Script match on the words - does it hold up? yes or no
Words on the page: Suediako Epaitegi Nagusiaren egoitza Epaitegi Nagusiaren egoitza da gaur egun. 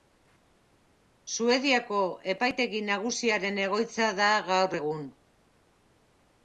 no